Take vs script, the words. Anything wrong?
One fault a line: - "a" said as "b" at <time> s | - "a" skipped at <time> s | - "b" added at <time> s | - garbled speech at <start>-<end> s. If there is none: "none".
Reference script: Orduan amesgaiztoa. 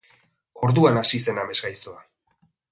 - "hasi zen" added at 1.0 s